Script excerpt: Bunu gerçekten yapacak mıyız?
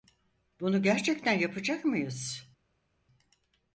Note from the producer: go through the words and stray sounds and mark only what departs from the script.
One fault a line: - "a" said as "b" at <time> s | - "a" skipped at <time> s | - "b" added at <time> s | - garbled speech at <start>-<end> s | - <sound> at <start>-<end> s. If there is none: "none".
none